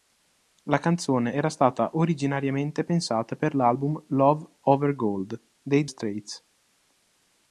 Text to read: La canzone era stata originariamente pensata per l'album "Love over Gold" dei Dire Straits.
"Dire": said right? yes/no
no